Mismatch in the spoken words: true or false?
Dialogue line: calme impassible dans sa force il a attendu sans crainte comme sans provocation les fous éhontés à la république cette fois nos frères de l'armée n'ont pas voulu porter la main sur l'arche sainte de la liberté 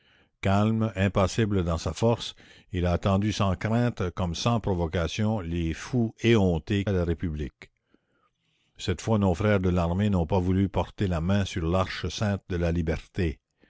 false